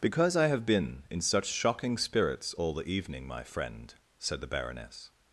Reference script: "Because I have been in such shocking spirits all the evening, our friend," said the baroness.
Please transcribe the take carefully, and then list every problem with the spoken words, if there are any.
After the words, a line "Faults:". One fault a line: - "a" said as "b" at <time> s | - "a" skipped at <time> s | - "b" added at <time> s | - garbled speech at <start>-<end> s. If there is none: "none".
"Because I have been in such shocking spirits all the evening, my friend," said the baroness.
Faults:
- "our" said as "my" at 3.3 s